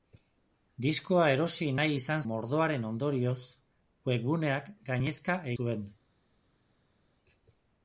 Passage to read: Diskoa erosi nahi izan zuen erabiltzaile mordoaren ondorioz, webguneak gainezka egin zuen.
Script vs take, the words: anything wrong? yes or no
yes